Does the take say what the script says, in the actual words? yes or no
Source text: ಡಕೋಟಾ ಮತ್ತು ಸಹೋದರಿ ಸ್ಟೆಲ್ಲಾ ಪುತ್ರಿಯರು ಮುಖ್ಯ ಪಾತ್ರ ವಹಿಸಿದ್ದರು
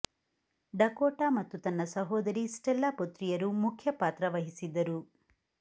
no